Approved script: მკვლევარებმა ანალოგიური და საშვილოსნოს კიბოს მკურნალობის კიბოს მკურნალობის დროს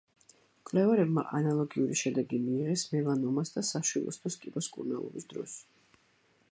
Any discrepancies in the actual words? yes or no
yes